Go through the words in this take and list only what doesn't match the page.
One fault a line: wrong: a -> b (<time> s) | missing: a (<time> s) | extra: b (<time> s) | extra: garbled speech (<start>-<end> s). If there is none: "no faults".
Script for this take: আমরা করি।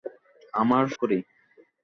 no faults